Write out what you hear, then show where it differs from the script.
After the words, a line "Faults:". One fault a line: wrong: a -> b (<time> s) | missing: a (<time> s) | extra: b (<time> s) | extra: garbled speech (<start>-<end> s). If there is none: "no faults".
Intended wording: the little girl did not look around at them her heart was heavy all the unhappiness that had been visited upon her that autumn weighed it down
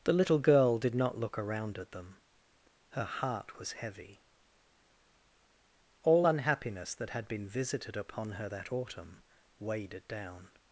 the little girl did not look around at them her heart was heavy all unhappiness that had been visited upon her that autumn weighed it down
Faults:
missing: the (6.3 s)